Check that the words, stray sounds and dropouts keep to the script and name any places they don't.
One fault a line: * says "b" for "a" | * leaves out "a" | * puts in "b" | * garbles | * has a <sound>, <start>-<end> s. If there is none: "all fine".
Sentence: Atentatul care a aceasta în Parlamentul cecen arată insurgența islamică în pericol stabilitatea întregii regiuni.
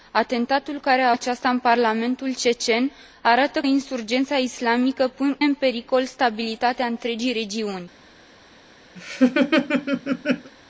* has a laugh, 9.0-10.5 s